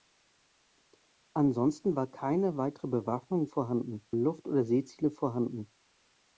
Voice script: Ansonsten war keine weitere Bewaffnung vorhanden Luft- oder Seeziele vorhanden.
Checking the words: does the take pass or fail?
pass